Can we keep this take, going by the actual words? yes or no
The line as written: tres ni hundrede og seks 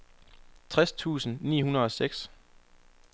no